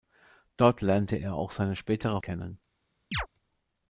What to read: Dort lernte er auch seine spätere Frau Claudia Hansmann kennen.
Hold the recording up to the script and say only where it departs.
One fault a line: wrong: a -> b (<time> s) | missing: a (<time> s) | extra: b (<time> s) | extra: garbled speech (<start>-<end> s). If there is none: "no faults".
missing: Frau Claudia Hansmann (2.2 s)